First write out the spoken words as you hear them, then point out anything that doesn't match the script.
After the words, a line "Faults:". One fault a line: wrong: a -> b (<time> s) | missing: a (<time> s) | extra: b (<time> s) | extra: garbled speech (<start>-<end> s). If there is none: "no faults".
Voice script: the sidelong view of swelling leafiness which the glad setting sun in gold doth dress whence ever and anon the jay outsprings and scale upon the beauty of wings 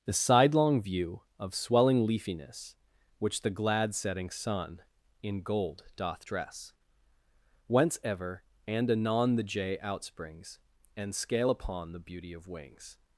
the sidelong view of swelling leafiness which the glad setting sun in gold doth dress whence ever and anon the jay outsprings and scale upon the beauty of wings
Faults:
no faults